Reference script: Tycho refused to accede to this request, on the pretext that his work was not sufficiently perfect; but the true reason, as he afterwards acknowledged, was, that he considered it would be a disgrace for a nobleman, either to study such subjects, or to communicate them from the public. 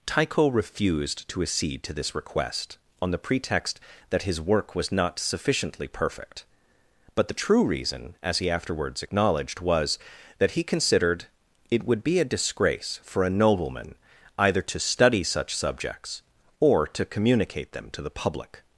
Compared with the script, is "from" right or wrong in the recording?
wrong